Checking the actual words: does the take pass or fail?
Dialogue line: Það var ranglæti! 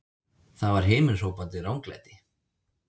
fail